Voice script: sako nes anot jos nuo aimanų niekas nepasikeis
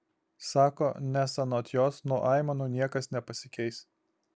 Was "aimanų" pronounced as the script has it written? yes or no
yes